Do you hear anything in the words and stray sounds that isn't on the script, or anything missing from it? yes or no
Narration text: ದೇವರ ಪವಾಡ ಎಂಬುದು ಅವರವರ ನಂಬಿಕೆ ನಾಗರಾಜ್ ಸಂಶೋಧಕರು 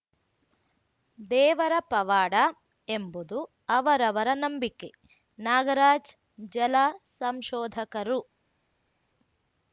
yes